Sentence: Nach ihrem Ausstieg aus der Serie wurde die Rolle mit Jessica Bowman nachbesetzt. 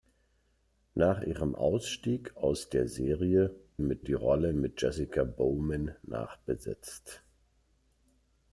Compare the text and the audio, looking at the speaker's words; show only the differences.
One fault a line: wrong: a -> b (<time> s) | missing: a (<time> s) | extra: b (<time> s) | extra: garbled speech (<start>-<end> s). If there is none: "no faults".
wrong: wurde -> mit (3.8 s)